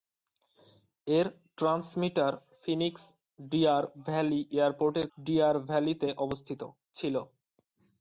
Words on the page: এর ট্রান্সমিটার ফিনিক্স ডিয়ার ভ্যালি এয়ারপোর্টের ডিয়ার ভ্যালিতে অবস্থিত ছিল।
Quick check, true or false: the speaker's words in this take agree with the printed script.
true